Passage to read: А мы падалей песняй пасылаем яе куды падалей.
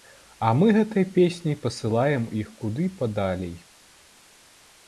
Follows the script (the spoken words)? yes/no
no